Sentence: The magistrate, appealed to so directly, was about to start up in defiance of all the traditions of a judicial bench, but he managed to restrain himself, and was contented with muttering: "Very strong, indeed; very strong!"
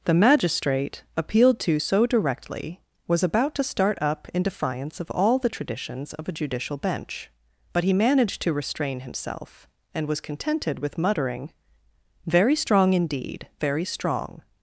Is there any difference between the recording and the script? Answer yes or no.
no